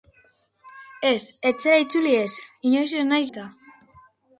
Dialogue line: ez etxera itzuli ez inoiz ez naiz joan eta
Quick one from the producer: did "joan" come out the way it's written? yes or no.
no